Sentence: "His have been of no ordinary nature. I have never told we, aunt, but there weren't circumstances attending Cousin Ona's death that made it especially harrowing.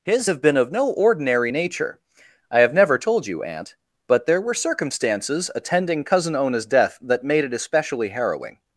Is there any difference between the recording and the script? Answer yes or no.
yes